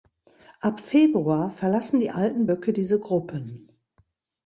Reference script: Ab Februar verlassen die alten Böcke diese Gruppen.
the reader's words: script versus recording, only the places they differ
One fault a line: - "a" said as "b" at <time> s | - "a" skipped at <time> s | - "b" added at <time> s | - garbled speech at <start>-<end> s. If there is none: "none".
none